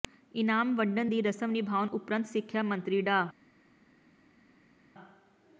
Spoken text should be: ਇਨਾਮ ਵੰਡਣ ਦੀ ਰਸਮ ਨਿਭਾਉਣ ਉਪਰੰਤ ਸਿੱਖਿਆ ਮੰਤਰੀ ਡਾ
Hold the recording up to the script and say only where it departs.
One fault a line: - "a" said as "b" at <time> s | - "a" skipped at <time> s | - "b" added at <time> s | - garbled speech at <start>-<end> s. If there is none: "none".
none